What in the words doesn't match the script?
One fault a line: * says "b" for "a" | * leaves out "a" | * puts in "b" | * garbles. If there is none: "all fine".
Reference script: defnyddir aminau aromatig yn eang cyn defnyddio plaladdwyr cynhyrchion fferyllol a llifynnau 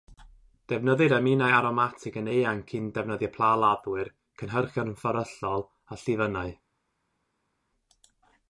all fine